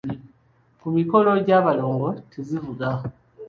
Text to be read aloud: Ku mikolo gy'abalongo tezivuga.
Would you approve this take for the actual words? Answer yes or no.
yes